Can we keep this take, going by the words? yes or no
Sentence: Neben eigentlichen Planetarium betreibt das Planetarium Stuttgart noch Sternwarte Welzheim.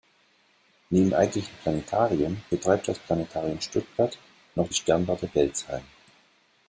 yes